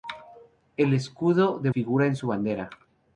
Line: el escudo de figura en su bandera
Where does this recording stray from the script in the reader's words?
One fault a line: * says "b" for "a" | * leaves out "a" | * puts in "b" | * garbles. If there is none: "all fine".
all fine